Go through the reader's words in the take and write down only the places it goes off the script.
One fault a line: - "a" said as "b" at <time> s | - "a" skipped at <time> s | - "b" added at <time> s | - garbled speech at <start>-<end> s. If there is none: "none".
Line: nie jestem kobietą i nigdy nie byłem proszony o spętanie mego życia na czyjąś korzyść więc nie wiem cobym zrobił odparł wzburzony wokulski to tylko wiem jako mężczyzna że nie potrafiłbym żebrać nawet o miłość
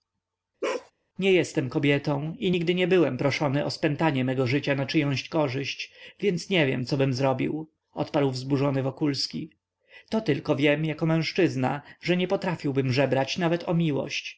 none